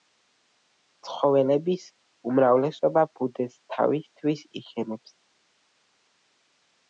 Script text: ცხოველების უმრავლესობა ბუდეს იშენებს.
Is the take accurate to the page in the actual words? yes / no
no